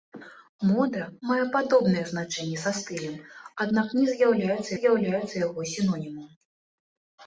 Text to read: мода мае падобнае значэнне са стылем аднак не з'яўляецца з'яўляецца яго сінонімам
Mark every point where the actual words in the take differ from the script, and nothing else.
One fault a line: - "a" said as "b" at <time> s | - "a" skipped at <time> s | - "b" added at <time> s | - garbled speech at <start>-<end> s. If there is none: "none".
none